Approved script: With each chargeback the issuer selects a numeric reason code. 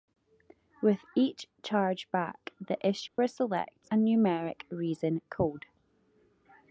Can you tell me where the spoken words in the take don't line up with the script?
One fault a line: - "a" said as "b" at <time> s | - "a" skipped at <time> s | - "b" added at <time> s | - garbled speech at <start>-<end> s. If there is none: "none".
none